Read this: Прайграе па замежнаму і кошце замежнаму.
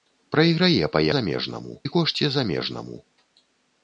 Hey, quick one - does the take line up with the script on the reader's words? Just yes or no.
yes